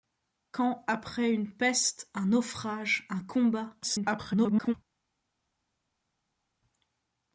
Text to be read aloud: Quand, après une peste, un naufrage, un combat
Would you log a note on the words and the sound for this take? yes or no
yes